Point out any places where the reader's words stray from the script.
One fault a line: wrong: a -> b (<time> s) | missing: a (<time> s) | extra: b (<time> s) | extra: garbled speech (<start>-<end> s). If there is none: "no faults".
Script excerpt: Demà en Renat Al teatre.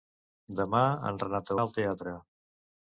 no faults